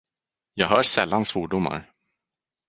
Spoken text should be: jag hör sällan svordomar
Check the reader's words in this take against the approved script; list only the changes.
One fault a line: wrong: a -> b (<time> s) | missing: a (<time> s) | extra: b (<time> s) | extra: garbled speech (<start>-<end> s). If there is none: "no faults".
no faults